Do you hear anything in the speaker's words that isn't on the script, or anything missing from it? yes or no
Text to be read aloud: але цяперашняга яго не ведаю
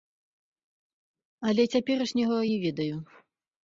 yes